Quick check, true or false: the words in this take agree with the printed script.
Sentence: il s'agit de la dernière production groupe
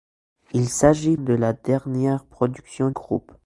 true